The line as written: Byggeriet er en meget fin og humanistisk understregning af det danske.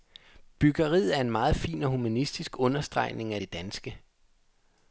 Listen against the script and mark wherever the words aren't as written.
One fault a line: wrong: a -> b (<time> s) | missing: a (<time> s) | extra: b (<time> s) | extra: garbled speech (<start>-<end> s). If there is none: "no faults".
no faults